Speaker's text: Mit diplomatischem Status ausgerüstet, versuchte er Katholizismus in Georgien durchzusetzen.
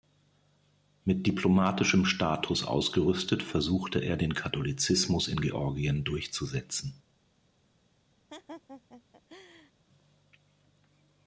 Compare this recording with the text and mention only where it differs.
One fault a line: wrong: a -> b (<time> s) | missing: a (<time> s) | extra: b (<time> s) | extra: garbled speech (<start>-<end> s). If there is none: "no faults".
extra: den (4.2 s)